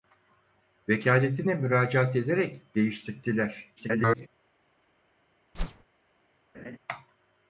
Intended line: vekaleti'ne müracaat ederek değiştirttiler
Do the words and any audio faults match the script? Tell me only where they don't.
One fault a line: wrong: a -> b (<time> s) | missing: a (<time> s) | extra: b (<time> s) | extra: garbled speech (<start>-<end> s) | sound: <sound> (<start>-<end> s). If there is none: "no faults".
extra: garbled speech (3.8-4.3 s)
sound: whoosh (5.5-5.8 s)
sound: laugh (6.5-6.8 s)